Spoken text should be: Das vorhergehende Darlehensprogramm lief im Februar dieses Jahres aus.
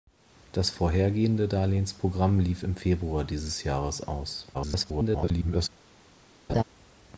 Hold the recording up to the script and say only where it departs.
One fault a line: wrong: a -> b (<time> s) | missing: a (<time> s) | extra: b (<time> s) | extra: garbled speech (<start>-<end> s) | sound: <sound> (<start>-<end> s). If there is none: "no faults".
extra: garbled speech (4.5-5.7 s)
sound: laugh (6.5-6.6 s)